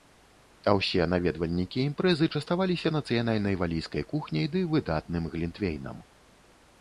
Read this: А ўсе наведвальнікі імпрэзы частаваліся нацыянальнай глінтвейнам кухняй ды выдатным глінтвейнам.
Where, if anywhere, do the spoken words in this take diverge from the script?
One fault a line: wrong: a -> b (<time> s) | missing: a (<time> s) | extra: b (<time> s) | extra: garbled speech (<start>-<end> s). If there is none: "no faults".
wrong: глінтвейнам -> валійскай (3.6 s)